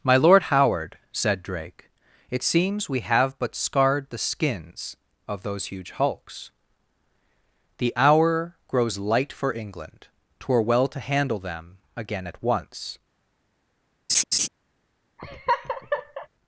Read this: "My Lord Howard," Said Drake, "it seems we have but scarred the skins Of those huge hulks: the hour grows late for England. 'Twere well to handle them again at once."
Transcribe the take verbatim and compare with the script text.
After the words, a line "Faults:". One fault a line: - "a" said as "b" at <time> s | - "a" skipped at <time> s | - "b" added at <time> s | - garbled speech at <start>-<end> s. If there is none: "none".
"My Lord Howard," Said Drake, "it seems we have but scarred the skins Of those huge hulks: the hour grows light for England. 'Twere well to handle them again at once."
Faults:
- "late" said as "light" at 9.0 s